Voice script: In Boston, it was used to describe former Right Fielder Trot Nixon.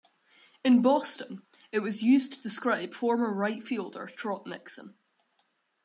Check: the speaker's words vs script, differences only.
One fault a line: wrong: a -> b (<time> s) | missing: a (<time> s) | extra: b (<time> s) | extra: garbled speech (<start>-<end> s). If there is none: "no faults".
no faults